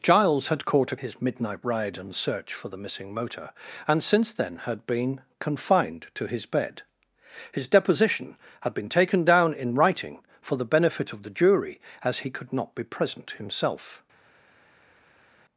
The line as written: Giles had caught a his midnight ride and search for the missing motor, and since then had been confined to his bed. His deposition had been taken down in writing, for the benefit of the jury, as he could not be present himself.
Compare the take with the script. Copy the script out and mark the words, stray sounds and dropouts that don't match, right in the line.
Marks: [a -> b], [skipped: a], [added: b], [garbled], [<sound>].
Giles had caught a his midnight ride and search for the missing motor, and since then had been confined to his bed. His deposition had been taken down in writing, for the benefit of the jury, as he could not be present himself.